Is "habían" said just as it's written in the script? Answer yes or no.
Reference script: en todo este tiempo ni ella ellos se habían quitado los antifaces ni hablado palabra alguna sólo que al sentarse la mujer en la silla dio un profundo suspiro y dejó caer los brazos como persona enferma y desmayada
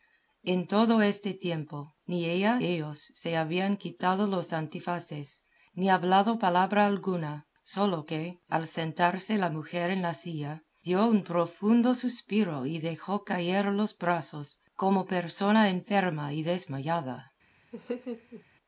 yes